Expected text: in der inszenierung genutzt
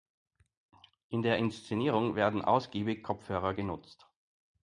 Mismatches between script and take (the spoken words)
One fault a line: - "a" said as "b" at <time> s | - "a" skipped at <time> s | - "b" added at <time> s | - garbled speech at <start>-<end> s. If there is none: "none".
- "werden ausgiebig kopfhörer" added at 2.1 s